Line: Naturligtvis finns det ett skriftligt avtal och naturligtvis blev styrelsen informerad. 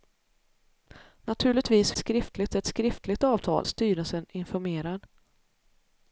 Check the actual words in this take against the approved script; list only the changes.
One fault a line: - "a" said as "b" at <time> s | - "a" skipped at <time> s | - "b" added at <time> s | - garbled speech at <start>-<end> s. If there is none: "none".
- "finns" said as "skriftligt" at 1.9 s
- "och naturligtvis blev" skipped at 3.6 s